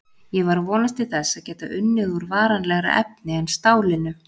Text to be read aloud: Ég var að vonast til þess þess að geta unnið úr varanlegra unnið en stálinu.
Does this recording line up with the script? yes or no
no